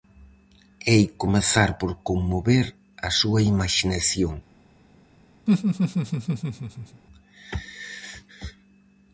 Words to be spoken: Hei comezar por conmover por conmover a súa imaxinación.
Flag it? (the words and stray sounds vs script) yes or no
yes